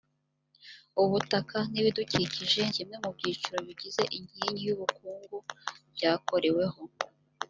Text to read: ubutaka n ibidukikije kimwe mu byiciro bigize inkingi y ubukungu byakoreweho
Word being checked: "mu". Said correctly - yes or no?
yes